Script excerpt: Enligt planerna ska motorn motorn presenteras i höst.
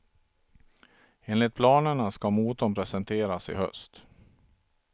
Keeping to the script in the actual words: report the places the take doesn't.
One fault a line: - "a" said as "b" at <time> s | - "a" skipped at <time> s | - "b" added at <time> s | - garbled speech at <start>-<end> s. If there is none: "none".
- "motorn" skipped at 2.7 s